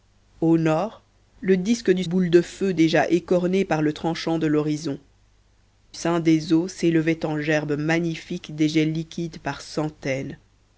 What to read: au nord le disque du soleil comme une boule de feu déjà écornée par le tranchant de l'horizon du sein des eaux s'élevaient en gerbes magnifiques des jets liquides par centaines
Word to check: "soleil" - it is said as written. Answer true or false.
false